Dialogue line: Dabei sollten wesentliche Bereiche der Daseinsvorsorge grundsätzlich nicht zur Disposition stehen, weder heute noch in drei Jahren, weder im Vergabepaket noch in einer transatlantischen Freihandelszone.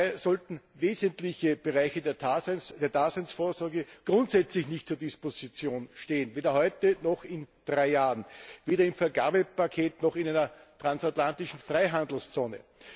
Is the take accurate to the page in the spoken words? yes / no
yes